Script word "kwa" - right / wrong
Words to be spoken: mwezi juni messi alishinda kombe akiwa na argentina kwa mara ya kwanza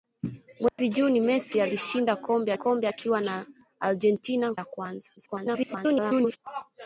wrong